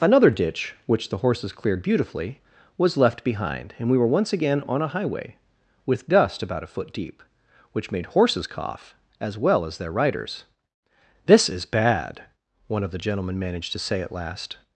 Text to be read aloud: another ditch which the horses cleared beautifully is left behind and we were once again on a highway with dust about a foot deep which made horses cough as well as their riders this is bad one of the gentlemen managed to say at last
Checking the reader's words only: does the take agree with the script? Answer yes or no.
no